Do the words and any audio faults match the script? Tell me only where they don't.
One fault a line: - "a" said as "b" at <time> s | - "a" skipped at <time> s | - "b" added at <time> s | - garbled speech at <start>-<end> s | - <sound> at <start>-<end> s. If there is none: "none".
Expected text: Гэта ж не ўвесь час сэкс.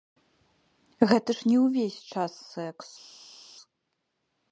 none